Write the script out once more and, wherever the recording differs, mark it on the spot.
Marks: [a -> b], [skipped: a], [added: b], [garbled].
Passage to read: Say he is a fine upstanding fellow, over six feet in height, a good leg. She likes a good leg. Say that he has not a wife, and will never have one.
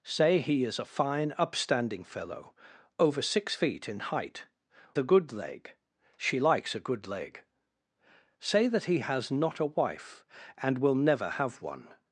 Say he is a fine upstanding fellow, over six feet in height, a good leg. She likes a good leg. Say that he has not a wife, and will never have one.